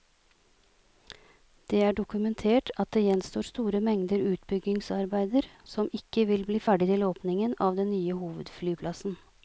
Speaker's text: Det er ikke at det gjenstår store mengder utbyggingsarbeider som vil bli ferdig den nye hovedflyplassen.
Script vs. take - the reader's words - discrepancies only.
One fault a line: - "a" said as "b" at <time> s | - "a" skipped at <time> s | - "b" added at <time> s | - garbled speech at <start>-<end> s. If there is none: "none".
- "ikke" said as "dokumentert" at 2.0 s
- "ikke" added at 6.0 s
- "til åpningen av" added at 6.9 s